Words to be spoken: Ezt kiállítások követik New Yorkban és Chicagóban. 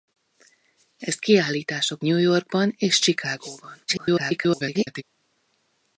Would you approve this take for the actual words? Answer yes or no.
no